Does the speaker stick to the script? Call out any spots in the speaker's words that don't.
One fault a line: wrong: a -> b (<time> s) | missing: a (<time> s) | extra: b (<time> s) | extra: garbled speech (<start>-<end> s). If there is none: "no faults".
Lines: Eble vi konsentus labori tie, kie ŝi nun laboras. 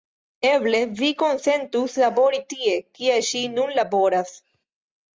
no faults